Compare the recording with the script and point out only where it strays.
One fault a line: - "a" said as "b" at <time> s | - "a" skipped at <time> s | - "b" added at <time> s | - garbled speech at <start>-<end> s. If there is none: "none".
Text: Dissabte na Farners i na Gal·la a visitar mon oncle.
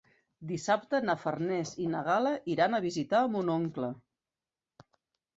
- "iran" added at 2.5 s